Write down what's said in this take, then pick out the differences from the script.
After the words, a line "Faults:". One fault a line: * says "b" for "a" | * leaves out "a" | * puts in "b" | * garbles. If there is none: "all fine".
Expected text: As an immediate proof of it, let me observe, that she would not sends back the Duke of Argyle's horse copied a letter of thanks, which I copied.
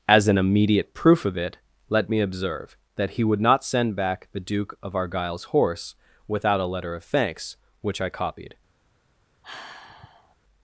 As an immediate proof of it, let me observe, that he would not send back the Duke of Argyle's horse without a letter of thanks, which I copied.
Faults:
* says "he" for "she"
* says "send" for "sends"
* says "without" for "copied"